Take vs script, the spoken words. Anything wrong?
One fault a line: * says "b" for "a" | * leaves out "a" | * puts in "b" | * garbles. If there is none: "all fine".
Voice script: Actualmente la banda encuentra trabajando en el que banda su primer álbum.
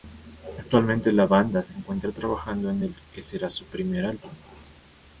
* puts in "se"
* says "será" for "banda"